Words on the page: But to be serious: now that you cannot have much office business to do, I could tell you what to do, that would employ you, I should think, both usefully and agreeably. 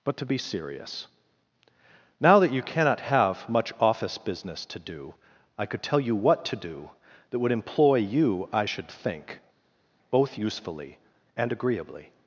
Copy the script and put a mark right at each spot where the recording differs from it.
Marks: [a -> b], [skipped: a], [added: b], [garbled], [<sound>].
But to be serious: now that you cannot have much office business to do, I could tell you what to do, that would employ you, I should think, both usefully and agreeably.